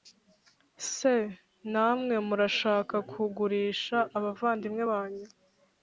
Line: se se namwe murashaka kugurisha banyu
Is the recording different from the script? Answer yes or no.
yes